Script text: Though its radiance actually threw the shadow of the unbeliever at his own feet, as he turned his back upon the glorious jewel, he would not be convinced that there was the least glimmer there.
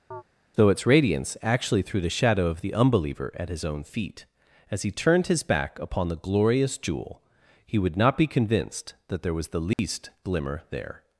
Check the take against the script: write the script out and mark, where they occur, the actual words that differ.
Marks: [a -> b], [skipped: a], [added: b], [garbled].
Though its radiance actually threw the shadow of the unbeliever at his own feet, as he turned his back upon the glorious jewel, he would not be convinced that there was the least glimmer there.